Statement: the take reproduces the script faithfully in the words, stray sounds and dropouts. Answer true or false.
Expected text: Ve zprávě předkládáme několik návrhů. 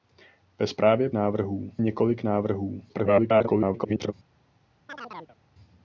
false